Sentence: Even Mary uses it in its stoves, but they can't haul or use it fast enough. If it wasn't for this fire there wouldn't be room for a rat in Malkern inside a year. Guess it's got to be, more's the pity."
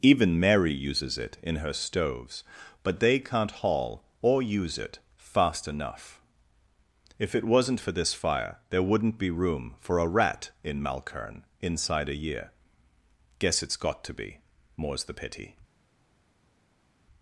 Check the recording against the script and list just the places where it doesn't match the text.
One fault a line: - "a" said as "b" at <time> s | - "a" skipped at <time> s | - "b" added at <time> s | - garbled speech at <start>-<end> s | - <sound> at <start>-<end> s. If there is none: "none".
- "its" said as "her" at 1.6 s